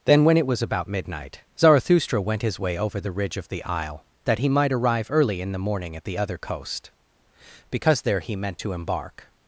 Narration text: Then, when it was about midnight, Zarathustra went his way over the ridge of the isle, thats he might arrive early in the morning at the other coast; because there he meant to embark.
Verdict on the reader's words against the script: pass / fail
fail